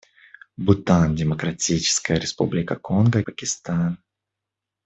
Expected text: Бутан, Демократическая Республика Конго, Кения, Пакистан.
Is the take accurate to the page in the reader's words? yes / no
no